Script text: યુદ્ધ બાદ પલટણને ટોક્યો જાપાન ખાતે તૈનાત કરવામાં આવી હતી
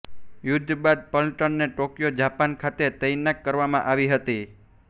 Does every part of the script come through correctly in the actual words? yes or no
yes